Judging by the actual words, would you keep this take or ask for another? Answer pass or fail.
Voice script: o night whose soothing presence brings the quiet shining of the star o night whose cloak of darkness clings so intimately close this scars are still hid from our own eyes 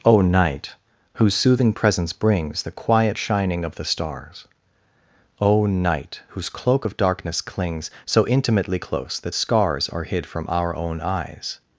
fail